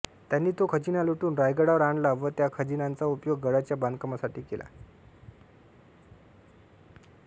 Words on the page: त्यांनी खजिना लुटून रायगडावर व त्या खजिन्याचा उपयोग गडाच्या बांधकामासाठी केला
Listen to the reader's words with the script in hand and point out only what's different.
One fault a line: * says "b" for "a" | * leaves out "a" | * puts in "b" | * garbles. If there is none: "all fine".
* puts in "तो"
* puts in "आणला"